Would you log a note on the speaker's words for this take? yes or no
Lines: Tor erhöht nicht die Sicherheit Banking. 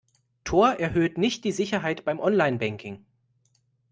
yes